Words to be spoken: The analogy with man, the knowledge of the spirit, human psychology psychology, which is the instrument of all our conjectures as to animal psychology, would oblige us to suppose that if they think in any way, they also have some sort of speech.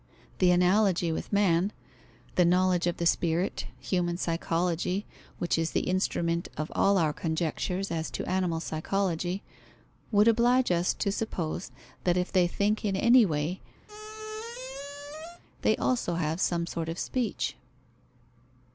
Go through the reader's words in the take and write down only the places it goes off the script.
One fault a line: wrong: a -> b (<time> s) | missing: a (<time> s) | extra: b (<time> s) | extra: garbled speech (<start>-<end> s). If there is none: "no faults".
missing: psychology (5.0 s)